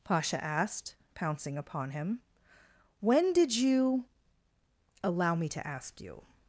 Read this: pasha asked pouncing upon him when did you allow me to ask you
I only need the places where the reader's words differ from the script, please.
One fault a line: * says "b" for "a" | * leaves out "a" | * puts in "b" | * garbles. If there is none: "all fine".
all fine